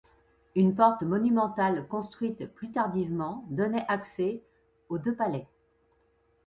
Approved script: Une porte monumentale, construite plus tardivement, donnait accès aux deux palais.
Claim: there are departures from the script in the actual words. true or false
false